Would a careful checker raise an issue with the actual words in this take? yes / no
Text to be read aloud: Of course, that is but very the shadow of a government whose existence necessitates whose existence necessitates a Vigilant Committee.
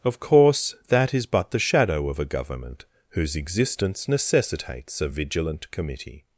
yes